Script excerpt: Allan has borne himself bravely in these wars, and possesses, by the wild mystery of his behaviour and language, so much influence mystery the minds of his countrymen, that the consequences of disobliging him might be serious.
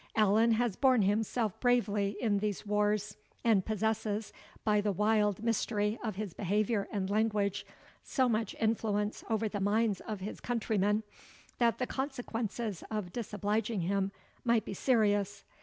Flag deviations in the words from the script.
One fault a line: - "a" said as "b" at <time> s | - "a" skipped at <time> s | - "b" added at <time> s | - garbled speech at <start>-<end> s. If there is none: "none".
- "mystery" said as "over" at 9.3 s